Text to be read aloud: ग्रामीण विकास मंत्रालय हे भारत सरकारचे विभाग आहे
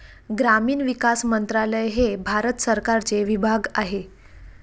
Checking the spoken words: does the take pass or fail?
pass